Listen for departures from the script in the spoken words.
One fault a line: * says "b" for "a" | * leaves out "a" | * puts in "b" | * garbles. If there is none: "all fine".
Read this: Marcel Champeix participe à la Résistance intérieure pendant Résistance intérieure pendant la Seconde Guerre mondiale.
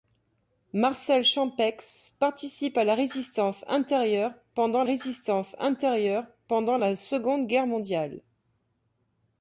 all fine